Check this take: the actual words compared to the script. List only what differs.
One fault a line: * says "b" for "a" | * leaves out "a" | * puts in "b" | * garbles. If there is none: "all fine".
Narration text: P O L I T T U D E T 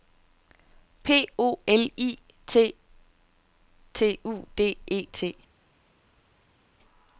all fine